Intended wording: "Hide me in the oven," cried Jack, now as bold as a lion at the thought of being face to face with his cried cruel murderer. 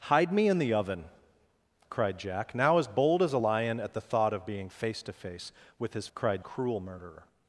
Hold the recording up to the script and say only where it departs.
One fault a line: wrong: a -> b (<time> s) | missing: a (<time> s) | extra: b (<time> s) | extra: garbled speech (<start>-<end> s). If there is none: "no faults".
no faults